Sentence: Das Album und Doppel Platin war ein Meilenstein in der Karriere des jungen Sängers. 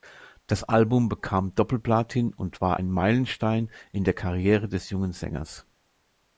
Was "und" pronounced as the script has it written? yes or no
no